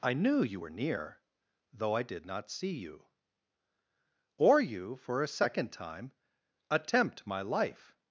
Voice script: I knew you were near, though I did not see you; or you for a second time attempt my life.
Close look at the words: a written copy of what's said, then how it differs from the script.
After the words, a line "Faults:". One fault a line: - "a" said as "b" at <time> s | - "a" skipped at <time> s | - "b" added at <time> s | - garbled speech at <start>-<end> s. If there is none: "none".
I knew you were near, though I did not see you; or you for a second time attempt my life.
Faults:
none